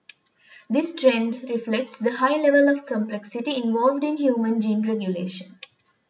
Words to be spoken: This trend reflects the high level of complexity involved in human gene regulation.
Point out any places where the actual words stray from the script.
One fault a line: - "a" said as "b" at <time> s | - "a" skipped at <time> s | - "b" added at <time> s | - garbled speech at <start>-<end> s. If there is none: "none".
none